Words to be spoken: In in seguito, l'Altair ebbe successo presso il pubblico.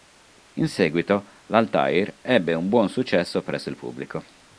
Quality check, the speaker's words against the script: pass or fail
fail